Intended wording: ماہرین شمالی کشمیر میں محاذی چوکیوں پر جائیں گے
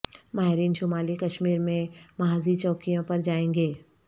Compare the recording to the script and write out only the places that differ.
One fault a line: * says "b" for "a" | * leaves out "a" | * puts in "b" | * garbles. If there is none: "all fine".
all fine